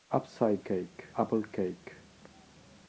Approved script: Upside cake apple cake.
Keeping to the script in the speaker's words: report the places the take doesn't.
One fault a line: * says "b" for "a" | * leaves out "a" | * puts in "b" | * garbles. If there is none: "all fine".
all fine